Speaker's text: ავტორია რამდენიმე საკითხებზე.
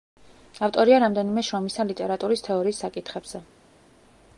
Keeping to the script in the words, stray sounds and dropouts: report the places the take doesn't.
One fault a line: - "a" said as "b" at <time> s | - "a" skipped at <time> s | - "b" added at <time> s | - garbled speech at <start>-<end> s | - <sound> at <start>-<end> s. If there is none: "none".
- "შრომისა ლიტერატურის თეორიის" added at 1.5 s